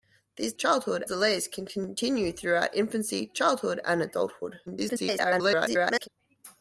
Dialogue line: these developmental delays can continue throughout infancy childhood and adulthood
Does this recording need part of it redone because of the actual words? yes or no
yes